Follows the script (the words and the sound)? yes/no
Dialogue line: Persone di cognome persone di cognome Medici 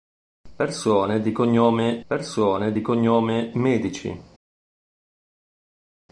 yes